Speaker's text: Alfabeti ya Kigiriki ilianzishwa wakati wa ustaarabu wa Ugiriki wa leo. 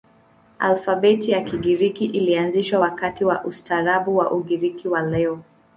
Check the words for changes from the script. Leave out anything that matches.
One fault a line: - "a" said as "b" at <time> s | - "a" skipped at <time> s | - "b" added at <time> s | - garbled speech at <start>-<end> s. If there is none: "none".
none